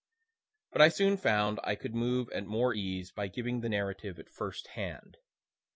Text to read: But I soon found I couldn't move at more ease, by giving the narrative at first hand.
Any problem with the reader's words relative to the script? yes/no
yes